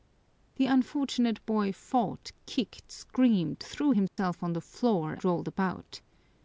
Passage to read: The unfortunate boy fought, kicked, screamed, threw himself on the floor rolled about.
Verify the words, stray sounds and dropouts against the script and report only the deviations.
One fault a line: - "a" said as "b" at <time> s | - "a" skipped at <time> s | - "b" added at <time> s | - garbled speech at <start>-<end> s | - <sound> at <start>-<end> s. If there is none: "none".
- dropout at 4.1-4.2 s